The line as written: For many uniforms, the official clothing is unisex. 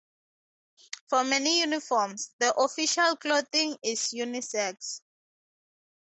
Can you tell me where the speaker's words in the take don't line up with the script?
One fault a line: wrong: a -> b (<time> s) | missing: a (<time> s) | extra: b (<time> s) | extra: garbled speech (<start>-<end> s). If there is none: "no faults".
no faults